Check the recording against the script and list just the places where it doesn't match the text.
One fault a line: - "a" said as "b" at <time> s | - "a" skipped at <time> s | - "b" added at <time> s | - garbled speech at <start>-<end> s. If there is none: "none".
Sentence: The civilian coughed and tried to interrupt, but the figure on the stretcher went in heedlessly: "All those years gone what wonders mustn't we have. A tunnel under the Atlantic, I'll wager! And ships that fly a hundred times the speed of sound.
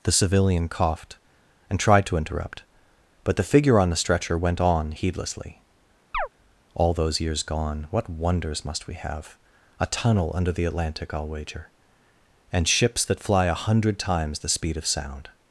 - "in" said as "on" at 4.6 s
- "mustn't" said as "must" at 8.6 s